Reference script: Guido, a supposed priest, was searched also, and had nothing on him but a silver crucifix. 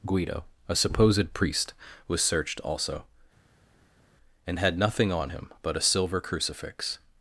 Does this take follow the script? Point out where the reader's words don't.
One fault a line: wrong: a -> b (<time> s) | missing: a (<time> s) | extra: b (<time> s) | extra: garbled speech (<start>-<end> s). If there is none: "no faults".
no faults